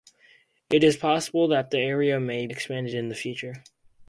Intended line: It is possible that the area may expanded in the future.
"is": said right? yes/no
yes